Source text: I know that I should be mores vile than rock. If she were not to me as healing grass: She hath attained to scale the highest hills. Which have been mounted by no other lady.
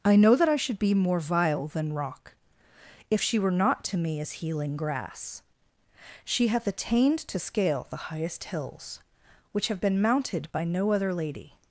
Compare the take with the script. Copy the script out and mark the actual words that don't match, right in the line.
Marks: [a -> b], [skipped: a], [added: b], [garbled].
I know that I should be [mores -> more] vile than rock. If she were not to me as healing grass: She hath attained to scale the highest hills. Which have been mounted by no other lady.